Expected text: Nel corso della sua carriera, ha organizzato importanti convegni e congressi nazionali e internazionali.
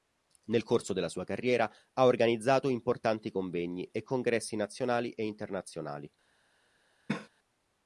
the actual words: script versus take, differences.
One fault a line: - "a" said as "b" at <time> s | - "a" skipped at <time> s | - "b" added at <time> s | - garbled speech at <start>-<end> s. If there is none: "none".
none